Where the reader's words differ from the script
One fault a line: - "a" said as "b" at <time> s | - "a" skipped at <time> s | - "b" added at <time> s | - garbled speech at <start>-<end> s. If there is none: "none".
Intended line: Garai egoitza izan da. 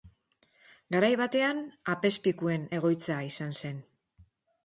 - "batean apezpikuen" added at 1.2 s
- "da" said as "zen" at 3.6 s